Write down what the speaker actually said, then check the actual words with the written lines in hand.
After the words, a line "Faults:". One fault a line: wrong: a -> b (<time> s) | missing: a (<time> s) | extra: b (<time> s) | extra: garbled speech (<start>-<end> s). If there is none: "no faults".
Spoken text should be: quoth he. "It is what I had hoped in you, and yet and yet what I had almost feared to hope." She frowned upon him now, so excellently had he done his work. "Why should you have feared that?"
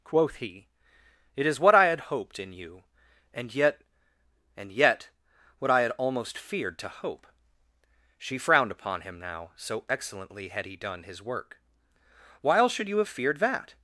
quoth he. "It is what I had hoped in you, and yet and yet what I had almost feared to hope." She frowned upon him now, so excellently had he done his work. "While should you have feared that?"
Faults:
wrong: Why -> While (12.4 s)